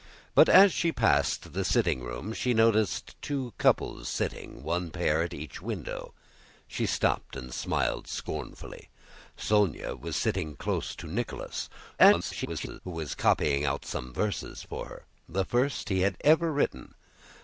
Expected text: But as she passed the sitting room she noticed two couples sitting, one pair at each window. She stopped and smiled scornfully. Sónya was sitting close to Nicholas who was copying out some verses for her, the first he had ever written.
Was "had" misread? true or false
false